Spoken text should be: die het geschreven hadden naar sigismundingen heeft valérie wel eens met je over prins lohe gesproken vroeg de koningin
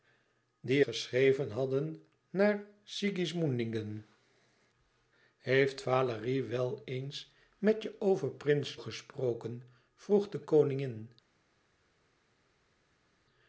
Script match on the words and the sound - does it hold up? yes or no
no